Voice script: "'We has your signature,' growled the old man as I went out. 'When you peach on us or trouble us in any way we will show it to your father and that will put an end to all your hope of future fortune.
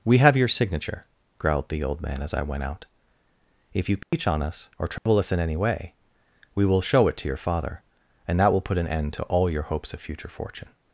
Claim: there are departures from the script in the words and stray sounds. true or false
true